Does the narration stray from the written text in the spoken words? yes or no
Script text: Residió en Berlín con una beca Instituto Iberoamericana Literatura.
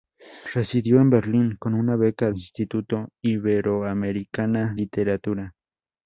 no